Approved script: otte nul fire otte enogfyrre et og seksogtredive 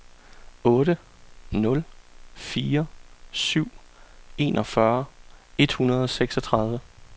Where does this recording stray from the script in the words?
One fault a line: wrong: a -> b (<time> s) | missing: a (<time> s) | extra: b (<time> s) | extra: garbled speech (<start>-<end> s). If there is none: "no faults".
wrong: otte -> syv (3.3 s)
extra: hundrede (5.7 s)